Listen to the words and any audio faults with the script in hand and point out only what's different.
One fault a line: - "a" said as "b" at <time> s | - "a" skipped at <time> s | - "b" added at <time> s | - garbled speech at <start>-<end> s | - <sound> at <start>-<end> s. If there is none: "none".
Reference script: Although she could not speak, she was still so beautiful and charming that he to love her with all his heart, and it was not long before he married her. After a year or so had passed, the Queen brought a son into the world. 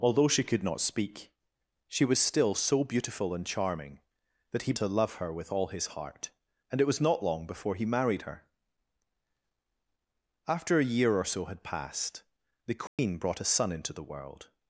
- dropout at 12.9-13.0 s